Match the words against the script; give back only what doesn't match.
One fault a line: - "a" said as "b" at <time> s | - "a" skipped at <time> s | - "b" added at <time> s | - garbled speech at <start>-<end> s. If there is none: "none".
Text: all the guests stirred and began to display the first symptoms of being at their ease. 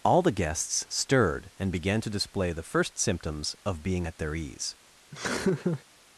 none